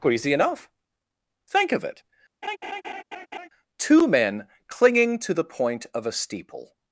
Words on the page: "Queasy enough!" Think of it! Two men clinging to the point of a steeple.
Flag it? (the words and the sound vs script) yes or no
yes